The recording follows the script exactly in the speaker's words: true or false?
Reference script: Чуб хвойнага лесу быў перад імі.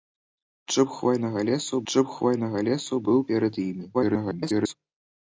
false